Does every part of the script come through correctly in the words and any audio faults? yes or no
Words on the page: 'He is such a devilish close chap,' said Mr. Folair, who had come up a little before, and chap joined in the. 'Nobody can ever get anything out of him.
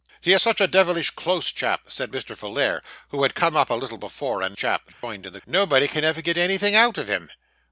no